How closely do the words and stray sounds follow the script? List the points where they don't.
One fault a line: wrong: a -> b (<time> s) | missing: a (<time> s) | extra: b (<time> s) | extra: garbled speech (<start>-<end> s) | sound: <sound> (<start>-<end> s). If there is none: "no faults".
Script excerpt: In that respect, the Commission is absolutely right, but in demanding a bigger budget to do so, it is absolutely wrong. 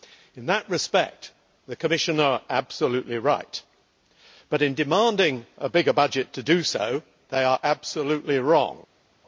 no faults